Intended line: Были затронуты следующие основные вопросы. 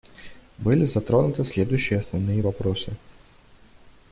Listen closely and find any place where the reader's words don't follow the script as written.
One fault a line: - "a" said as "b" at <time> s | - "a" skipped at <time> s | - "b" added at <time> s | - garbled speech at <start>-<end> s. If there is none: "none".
none